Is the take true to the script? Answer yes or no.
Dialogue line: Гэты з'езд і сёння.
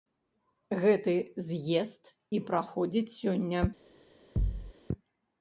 no